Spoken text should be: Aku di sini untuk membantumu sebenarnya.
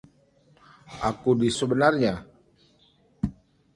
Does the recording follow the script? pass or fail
fail